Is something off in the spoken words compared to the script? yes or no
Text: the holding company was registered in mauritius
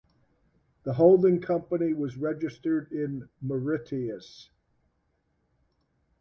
no